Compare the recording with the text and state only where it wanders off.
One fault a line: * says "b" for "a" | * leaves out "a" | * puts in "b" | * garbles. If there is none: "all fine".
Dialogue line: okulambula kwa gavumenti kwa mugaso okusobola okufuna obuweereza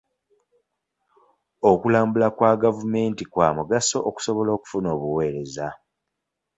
all fine